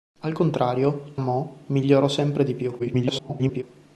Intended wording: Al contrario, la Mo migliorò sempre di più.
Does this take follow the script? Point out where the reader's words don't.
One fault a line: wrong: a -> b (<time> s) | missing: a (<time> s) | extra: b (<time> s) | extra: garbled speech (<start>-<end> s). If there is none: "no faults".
missing: la (1.1 s)
extra: garbled speech (2.8-3.6 s)